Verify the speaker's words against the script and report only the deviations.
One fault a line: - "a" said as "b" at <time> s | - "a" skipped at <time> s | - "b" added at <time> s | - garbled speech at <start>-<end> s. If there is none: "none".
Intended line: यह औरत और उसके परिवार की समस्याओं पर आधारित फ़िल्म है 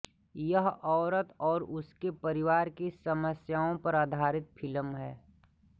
none